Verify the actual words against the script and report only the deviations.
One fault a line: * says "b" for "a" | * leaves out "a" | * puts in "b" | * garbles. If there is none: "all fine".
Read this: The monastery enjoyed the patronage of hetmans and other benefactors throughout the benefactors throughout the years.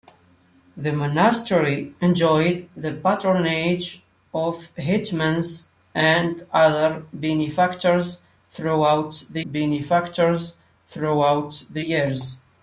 all fine